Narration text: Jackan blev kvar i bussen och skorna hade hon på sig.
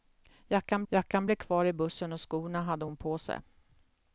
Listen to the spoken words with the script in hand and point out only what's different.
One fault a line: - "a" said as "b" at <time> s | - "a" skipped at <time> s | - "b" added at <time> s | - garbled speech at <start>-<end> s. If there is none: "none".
- "jackan" added at 0.9 s